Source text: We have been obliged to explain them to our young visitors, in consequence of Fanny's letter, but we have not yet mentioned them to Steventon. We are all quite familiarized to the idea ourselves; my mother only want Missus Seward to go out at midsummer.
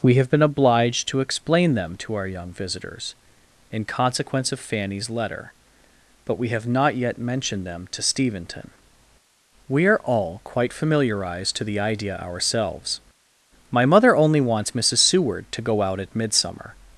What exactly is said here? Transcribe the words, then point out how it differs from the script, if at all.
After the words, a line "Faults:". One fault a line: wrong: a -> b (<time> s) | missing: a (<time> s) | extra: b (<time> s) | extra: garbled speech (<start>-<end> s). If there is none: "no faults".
We have been obliged to explain them to our young visitors, in consequence of Fanny's letter, but we have not yet mentioned them to Steventon. We are all quite familiarized to the idea ourselves; my mother only wants Missus Seward to go out at midsummer.
Faults:
wrong: want -> wants (14.4 s)